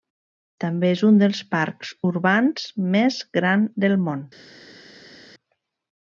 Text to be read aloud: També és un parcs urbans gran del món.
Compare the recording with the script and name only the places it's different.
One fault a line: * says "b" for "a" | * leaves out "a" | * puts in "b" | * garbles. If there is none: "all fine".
* puts in "dels"
* puts in "més"